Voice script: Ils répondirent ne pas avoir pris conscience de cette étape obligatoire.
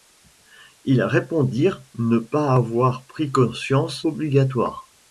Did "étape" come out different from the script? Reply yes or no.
yes